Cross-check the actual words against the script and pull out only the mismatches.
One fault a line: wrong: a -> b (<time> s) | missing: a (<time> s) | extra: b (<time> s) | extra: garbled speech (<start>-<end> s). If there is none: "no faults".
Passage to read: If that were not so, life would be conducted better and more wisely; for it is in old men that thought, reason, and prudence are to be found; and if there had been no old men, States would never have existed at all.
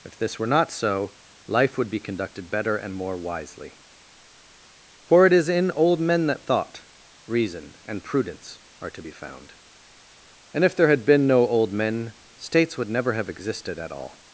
wrong: that -> this (0.2 s)